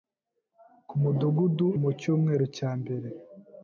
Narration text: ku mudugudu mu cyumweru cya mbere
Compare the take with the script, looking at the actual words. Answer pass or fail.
pass